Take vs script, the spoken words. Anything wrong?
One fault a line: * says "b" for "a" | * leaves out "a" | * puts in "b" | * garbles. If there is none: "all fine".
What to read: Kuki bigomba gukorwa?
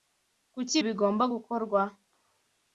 all fine